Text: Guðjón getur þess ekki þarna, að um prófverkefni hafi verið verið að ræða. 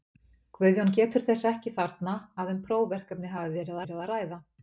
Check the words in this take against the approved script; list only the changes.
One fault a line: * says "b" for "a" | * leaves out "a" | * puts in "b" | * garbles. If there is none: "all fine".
all fine